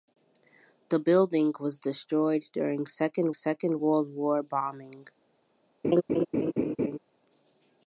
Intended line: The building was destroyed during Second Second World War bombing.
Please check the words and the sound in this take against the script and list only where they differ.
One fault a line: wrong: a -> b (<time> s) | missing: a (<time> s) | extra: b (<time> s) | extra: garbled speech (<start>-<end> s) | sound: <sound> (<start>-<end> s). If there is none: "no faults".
sound: laugh (5.8-7.0 s)